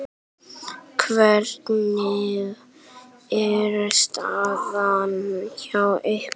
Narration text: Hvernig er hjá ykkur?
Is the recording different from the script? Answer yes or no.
yes